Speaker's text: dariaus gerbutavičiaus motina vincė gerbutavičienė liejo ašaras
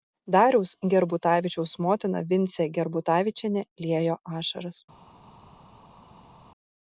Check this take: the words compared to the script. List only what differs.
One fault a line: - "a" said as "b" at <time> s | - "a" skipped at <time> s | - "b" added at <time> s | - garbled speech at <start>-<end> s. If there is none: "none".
none